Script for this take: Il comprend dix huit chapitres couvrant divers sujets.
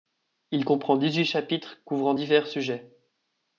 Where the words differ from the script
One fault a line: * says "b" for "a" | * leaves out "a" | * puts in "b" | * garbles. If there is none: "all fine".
all fine